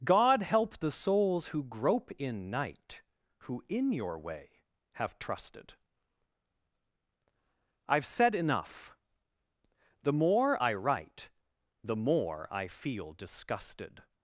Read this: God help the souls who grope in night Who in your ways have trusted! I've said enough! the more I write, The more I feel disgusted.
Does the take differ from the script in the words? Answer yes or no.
yes